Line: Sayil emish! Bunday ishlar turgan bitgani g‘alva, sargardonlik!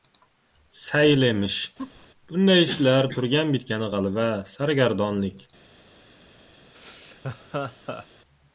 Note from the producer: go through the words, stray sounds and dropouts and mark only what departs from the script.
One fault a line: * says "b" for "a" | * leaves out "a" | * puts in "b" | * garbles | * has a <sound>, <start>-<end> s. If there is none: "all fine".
* has a laugh, 1.8-2.1 s
* has a laugh, 6.7-8.1 s